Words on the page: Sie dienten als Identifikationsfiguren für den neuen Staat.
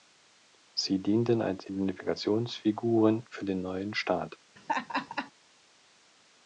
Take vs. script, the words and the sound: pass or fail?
fail